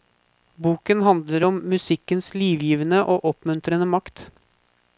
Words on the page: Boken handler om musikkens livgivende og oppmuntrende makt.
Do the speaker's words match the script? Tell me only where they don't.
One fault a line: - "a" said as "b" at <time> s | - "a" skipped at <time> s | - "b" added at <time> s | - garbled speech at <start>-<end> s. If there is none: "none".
none